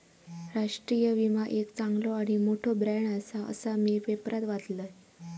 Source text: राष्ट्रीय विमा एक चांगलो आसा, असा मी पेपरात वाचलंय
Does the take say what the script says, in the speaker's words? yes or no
no